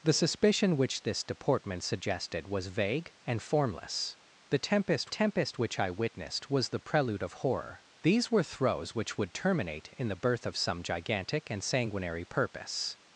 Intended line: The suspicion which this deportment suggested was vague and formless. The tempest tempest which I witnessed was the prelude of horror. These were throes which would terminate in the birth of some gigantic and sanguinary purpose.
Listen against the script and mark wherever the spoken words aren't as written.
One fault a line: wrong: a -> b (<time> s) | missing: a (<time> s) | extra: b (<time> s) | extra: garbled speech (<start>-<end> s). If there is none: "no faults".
no faults